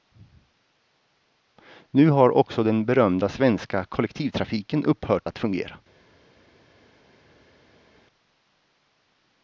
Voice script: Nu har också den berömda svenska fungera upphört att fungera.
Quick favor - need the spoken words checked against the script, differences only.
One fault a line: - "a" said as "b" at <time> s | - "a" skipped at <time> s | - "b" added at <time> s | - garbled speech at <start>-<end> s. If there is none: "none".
- "fungera" said as "kollektivtrafiken" at 3.9 s